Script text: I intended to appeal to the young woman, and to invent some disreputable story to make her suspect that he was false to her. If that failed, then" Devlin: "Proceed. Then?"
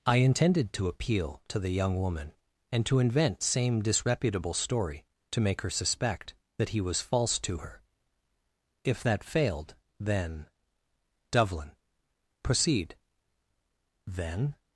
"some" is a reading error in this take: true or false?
true